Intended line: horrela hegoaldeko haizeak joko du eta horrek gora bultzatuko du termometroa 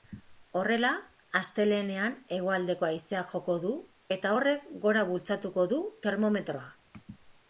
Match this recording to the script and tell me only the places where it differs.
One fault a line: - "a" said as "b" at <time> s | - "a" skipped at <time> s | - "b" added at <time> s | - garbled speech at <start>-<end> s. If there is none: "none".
- "astelehenean" added at 1.4 s